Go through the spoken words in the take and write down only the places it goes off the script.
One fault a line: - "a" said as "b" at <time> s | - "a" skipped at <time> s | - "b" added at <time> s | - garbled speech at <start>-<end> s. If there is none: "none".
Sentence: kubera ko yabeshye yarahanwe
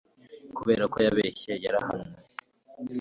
none